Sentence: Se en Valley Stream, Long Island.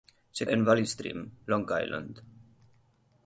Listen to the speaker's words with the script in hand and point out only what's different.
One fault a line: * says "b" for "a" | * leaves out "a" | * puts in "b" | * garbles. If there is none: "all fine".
all fine